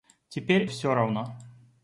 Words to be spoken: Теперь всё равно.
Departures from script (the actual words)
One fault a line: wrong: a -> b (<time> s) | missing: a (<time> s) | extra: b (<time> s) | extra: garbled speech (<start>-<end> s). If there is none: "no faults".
no faults